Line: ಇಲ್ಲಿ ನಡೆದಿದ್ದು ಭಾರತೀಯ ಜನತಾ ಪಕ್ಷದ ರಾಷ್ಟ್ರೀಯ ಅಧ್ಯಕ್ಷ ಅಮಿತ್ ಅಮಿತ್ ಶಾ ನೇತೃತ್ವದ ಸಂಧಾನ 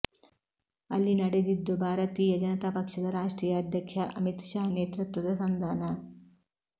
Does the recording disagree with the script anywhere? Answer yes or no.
yes